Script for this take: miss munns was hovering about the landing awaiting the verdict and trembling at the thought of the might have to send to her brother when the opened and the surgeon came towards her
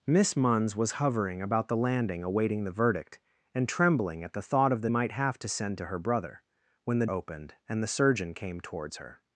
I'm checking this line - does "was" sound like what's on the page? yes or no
yes